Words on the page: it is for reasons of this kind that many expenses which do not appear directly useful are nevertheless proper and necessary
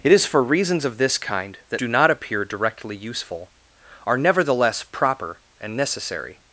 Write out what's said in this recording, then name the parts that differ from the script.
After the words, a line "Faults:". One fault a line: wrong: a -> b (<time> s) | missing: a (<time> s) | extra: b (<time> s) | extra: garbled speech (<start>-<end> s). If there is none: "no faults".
it is for reasons of this kind that do not appear directly useful are nevertheless proper and necessary
Faults:
missing: many expenses which (1.8 s)